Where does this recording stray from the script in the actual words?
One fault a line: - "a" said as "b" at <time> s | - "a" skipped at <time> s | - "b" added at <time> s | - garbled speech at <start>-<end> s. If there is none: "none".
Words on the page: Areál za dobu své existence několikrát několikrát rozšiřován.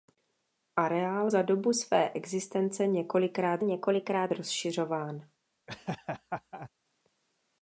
none